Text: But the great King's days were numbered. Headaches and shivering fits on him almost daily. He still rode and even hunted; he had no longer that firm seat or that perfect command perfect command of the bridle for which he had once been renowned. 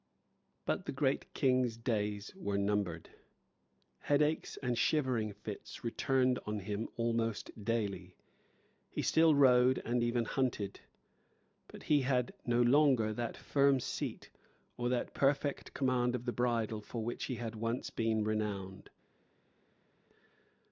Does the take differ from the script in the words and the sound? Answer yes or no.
yes